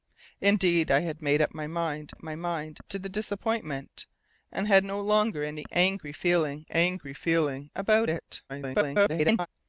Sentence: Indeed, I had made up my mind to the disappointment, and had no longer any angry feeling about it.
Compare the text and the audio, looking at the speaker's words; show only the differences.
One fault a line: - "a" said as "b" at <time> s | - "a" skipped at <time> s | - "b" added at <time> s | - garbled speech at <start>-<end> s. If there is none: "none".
- "up my mind" added at 2.1 s
- "angry feeling" added at 6.7 s
- garbled speech at 8.5-9.5 s